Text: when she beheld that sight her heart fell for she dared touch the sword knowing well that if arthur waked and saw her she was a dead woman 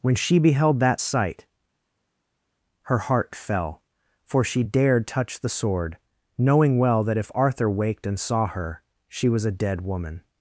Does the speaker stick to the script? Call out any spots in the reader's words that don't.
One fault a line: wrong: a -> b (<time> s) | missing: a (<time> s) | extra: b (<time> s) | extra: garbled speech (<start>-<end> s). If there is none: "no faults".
no faults